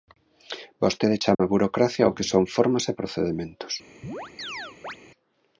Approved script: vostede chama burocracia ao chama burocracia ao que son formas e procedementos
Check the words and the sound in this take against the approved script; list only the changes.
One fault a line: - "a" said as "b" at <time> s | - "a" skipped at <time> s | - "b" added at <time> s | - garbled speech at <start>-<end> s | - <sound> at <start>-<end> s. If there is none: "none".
- dropout at 1.3-1.4 s
- "chama burocracia ao" skipped at 2.1 s
- chirp at 4.0-5.0 s